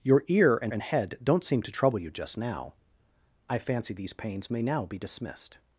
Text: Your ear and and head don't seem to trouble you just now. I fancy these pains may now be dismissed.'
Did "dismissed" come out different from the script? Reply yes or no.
no